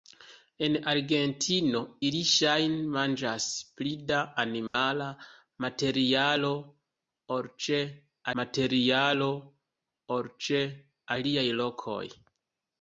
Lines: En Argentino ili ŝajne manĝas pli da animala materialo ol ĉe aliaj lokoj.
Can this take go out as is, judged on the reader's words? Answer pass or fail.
fail